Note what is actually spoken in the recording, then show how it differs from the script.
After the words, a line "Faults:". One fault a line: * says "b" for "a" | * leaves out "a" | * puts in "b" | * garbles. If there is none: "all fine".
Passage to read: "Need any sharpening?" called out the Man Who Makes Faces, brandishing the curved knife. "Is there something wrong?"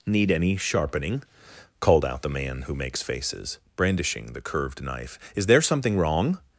"Need any sharpening?" called out the Man Who Makes Faces, brandishing the curved knife. "Is there something wrong?"
Faults:
all fine